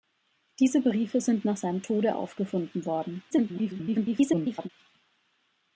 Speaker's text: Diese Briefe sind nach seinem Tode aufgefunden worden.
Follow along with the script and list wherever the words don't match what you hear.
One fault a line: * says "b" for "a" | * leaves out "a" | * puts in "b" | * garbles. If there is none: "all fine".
* garbles